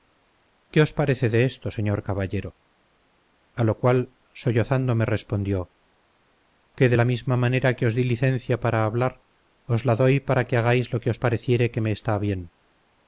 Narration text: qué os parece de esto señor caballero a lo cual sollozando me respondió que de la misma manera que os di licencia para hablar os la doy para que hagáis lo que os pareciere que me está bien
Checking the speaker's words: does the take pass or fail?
pass